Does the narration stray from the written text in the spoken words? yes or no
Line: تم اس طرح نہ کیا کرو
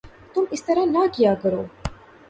no